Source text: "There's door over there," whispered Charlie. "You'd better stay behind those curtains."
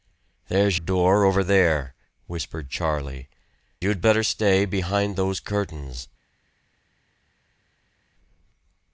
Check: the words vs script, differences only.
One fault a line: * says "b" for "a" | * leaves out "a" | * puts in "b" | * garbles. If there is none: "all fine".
all fine